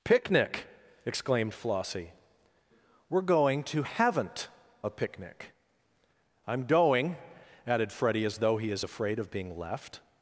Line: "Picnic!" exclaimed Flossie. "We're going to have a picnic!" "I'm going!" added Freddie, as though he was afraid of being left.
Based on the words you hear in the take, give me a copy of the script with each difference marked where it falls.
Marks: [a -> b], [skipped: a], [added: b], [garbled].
"Picnic!" exclaimed Flossie. "We're going to [have -> haven't] a picnic!" "I'm going!" added Freddie, as though he [was -> is] afraid of being left.